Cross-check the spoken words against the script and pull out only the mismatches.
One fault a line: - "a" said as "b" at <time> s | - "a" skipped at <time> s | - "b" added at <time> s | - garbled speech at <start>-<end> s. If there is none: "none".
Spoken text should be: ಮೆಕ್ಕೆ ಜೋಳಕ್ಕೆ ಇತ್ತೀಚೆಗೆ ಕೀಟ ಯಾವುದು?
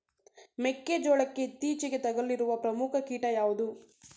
- "ತಗುಲಿರುವ ಪ್ರಮುಖ" added at 2.0 s